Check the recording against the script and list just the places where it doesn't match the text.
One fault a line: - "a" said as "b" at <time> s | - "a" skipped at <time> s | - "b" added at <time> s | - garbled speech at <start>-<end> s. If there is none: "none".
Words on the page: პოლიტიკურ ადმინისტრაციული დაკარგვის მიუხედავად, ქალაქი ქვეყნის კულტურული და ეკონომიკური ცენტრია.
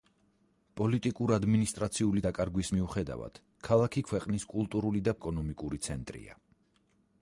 none